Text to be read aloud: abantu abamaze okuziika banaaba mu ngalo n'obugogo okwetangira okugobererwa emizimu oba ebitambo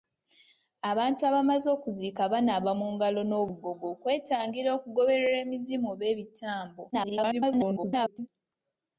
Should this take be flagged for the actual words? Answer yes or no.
yes